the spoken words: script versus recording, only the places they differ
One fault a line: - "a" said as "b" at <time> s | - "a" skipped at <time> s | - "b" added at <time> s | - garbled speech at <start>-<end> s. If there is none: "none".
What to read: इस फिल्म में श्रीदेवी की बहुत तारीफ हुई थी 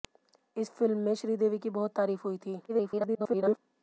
- garbled speech at 2.7-3.6 s